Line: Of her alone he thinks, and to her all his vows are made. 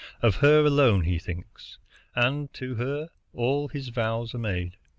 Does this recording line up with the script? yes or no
yes